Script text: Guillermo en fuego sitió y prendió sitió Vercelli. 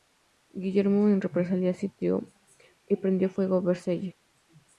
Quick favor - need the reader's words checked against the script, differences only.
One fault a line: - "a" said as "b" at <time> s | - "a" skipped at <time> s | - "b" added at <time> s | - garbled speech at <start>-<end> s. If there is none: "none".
- "fuego" said as "represalia" at 1.2 s
- "sitió" said as "fuego" at 3.3 s